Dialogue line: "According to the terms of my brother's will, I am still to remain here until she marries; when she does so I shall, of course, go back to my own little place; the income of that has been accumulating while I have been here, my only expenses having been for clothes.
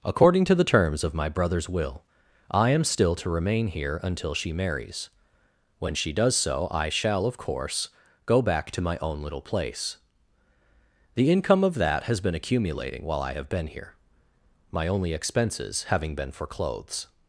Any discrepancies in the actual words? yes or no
no